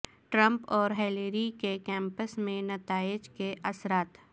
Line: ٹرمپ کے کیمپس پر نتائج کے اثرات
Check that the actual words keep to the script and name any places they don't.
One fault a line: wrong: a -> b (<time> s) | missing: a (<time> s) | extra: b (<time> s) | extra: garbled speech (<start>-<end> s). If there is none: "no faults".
extra: اور ہلیری (0.7 s)
wrong: پر -> میں (2.4 s)